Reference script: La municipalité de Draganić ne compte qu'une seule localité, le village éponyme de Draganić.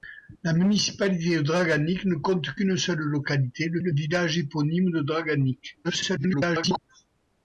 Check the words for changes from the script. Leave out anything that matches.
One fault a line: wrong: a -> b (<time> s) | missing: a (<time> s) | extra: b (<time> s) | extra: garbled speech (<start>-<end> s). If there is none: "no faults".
extra: le (3.8 s)
extra: garbled speech (5.8-6.8 s)